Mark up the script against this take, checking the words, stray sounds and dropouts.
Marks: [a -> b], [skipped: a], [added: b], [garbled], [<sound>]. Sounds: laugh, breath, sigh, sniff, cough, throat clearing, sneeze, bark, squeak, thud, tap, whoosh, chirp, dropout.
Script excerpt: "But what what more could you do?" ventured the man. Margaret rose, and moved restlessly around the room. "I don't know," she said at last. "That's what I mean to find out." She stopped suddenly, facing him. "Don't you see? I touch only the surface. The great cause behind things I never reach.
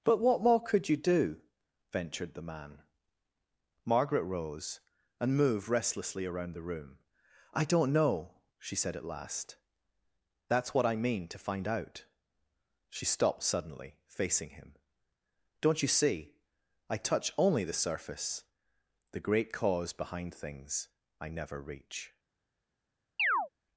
"But what [skipped: what] more could you do?" ventured the man. Margaret rose, and moved restlessly around the room. "I don't know," she said at last. "That's what I mean to find out." She stopped suddenly, facing him. "Don't you see? I touch only the surface. The great cause behind things I never reach. [chirp]